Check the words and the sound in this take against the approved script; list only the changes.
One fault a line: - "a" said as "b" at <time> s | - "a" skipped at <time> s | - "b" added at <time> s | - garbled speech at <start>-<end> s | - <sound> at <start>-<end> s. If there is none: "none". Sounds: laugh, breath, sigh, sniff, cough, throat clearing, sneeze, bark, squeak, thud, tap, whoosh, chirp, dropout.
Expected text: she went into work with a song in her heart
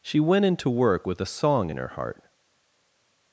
none